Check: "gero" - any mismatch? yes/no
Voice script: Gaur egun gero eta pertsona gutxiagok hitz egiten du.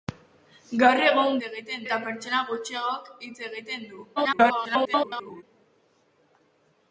yes